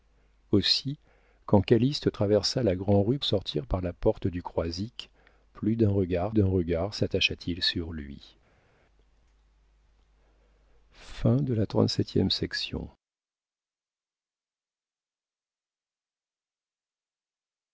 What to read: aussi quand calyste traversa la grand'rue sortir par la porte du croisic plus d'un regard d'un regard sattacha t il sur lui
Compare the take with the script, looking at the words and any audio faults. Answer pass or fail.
pass